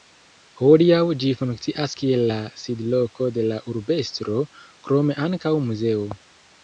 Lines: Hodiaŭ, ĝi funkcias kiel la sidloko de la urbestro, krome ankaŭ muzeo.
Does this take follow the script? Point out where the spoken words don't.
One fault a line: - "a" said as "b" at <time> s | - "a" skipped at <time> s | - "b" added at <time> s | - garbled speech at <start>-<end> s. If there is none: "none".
none